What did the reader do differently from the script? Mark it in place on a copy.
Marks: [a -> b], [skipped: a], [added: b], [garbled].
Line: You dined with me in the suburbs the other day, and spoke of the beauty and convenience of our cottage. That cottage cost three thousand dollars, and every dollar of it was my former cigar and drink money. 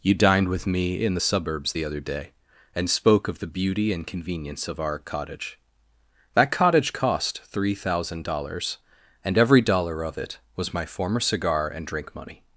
You dined with me in the suburbs the other day, and spoke of the beauty and convenience of our cottage. That cottage cost three thousand dollars, and every dollar of it was my former cigar and drink money.